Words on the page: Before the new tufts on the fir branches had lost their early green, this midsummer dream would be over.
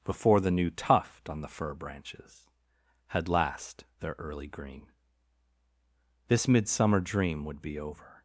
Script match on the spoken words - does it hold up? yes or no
no